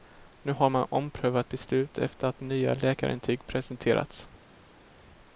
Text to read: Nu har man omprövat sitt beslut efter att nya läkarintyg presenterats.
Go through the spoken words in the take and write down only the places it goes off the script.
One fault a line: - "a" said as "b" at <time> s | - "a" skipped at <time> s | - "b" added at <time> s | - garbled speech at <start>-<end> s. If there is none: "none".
- "sitt" skipped at 1.5 s